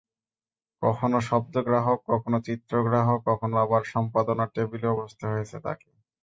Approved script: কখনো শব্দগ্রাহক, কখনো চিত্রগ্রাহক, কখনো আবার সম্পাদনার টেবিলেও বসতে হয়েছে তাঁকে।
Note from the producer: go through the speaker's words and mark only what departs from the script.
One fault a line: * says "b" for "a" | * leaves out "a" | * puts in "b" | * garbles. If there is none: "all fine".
all fine